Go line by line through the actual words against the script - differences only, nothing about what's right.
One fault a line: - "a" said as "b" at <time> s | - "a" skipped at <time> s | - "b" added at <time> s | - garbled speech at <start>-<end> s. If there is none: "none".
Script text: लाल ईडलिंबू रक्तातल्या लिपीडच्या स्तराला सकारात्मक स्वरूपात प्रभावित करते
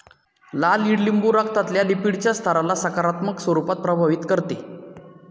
none